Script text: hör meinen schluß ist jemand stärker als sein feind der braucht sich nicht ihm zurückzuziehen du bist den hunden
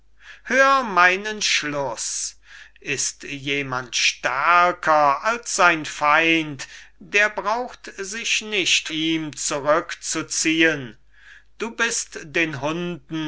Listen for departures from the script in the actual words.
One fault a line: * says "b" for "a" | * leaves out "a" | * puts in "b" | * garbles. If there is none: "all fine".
all fine